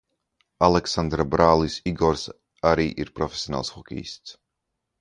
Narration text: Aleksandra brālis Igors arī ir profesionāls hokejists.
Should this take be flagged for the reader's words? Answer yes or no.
no